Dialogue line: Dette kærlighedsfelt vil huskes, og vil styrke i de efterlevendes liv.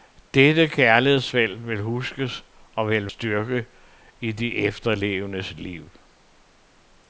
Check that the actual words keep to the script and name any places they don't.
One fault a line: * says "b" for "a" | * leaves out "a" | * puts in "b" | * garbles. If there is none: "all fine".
all fine